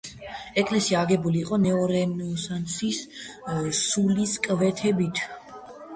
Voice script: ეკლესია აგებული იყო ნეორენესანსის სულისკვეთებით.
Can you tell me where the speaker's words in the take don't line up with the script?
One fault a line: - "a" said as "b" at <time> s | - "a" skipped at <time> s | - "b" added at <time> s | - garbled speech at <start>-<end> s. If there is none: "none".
none